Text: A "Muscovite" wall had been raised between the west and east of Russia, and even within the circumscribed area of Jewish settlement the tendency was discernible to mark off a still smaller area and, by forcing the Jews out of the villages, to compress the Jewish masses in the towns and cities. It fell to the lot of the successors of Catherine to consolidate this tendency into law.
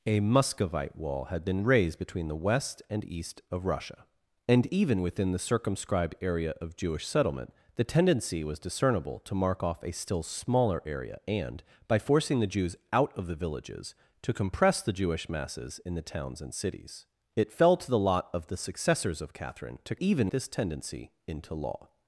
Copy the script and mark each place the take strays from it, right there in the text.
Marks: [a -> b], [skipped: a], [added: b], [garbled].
A "Muscovite" wall had been raised between the west and east of Russia, and even within the circumscribed area of Jewish settlement the tendency was discernible to mark off a still smaller area and, by forcing the Jews out of the villages, to compress the Jewish masses in the towns and cities. It fell to the lot of the successors of Catherine to [consolidate -> even] this tendency into law.